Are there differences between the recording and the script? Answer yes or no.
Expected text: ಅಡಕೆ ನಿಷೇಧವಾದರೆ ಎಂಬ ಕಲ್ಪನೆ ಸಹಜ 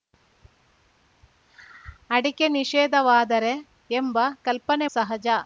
no